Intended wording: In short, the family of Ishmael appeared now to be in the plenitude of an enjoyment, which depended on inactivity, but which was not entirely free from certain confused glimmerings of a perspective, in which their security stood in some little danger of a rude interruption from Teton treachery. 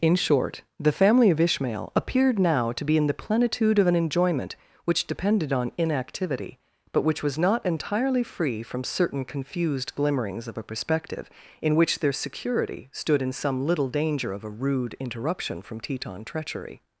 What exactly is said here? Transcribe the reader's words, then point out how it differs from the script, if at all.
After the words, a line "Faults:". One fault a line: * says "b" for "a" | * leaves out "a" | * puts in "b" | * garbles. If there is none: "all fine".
In short, the family of Ishmael appeared now to be in the plenitude of an enjoyment, which depended on inactivity, but which was not entirely free from certain confused glimmerings of a perspective, in which their security stood in some little danger of a rude interruption from Teton treachery.
Faults:
all fine